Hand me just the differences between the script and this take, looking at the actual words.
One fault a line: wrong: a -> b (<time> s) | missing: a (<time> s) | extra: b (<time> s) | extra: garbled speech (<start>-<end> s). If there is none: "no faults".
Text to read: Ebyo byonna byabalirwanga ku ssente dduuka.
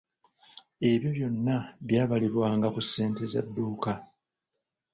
extra: za (3.3 s)